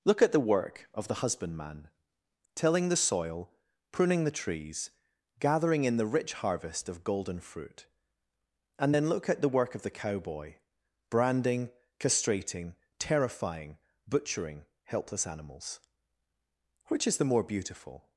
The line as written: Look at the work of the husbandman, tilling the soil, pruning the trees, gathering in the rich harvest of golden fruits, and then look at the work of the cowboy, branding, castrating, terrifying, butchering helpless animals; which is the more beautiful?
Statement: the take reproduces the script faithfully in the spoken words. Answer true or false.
false